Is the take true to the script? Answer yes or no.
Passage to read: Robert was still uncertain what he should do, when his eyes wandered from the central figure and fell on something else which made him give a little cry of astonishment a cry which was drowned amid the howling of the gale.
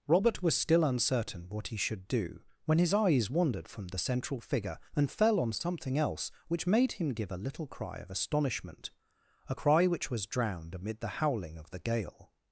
yes